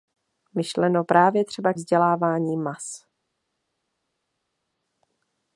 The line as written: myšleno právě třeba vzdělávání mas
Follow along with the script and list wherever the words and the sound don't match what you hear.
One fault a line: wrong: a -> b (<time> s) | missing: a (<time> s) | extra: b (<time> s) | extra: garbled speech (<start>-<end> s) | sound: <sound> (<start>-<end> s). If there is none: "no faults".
no faults